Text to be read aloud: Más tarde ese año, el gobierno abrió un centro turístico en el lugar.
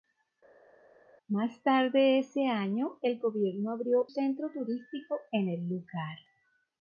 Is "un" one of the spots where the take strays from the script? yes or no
yes